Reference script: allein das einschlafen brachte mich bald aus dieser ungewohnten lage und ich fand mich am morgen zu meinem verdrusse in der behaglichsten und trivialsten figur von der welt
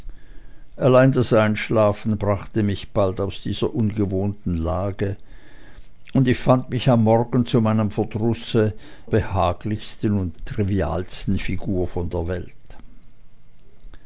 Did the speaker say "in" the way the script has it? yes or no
no